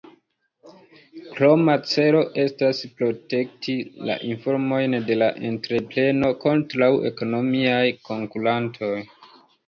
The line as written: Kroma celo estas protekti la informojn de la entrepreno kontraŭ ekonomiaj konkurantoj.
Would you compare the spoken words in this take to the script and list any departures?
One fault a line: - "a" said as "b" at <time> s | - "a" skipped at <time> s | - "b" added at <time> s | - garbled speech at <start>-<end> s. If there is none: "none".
none